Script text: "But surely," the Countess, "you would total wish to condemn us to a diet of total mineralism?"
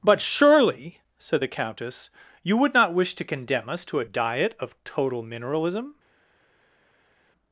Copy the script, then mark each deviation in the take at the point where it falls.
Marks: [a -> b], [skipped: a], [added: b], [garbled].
"But surely," [added: said] the Countess, "you would [total -> not] wish to condemn us to a diet of total mineralism?"